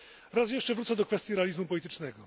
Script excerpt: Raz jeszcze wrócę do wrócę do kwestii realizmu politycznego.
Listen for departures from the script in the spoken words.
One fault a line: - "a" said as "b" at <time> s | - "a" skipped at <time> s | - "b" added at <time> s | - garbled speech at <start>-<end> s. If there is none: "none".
- "wrócę do" skipped at 1.1 s